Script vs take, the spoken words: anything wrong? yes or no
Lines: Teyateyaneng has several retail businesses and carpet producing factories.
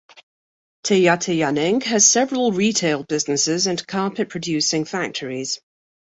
no